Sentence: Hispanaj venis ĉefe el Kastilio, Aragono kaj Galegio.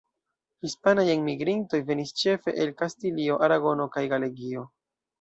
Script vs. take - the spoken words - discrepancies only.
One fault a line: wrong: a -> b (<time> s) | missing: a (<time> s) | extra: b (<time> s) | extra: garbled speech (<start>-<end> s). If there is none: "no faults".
extra: enmigrintoj (1.1 s)